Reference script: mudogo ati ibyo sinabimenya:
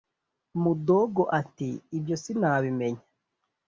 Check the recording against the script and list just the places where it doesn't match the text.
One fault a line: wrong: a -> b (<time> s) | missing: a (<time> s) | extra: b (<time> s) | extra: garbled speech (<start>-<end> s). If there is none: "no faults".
no faults